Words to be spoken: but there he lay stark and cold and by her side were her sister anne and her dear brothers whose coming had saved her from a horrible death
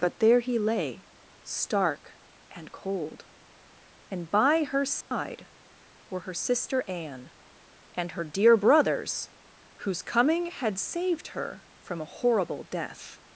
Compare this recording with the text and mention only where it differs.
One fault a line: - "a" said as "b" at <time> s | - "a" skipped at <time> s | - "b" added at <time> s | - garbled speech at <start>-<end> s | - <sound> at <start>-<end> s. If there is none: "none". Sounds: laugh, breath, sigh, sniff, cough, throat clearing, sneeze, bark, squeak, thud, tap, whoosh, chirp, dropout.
- dropout at 5.0-5.1 s